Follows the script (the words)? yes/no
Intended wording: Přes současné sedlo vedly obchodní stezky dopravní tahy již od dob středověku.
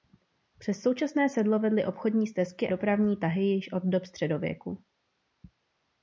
yes